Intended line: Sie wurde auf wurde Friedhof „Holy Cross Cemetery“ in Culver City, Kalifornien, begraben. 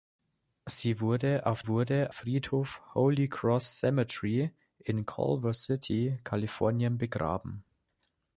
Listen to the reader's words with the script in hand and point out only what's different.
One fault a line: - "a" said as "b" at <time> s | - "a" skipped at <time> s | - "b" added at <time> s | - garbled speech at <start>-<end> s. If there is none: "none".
none